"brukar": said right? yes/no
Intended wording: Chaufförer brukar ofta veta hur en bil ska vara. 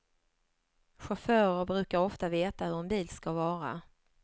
yes